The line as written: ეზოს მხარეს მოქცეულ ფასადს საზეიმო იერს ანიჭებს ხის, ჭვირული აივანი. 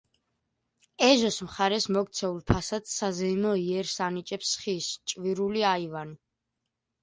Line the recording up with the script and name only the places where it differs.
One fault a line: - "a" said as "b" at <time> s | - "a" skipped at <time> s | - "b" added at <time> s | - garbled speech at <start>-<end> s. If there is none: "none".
none